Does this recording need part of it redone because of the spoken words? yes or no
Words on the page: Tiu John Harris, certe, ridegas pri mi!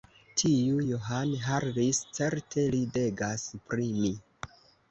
no